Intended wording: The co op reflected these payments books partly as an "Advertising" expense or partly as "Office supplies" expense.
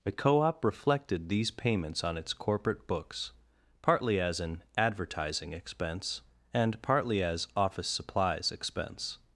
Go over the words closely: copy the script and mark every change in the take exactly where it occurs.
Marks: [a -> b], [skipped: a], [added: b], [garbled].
The co op reflected these payments [added: on its corporate] books partly as an "Advertising" expense [or -> and] partly as "Office supplies" expense.